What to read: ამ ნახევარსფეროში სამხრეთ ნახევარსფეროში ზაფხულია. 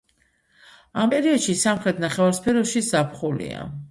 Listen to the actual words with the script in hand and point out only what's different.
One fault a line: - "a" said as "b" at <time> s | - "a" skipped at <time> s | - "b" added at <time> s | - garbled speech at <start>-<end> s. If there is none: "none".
- "ნახევარსფეროში" said as "პერიოდში" at 1.1 s